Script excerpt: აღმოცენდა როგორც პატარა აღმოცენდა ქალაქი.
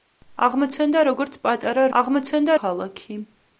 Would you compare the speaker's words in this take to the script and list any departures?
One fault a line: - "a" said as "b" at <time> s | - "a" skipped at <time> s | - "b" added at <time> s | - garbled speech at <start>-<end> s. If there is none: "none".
none